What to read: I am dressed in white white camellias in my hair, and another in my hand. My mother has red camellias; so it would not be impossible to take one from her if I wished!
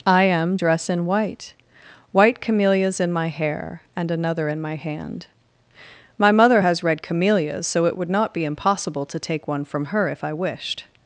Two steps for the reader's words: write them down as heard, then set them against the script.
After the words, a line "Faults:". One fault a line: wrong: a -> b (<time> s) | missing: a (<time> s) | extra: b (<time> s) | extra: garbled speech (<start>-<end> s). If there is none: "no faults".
I am dress in white white camellias in my hair, and another in my hand. My mother has red camellias; so it would not be impossible to take one from her if I wished!
Faults:
wrong: dressed -> dress (0.5 s)